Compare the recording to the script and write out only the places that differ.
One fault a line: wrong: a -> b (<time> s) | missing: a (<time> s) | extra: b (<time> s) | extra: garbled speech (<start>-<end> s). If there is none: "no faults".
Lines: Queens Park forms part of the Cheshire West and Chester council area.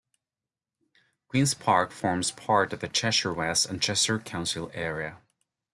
no faults